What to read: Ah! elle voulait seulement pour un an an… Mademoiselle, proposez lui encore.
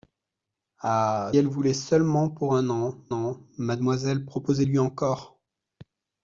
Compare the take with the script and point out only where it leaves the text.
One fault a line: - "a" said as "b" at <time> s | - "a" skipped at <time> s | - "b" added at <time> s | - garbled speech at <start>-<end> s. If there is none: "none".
none